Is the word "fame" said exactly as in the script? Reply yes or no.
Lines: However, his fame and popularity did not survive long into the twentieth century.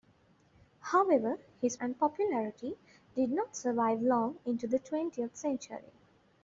no